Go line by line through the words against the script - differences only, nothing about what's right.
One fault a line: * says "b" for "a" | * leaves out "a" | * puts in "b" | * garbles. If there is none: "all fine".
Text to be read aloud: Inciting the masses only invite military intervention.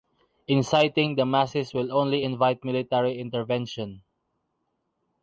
* puts in "will"